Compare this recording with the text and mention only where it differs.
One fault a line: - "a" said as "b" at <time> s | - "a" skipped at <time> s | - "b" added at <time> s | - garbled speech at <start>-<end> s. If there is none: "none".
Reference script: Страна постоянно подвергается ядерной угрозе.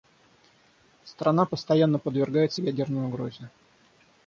none